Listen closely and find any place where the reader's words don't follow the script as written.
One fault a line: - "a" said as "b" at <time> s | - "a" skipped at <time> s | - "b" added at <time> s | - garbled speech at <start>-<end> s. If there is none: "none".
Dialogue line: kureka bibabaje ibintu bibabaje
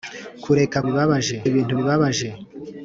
none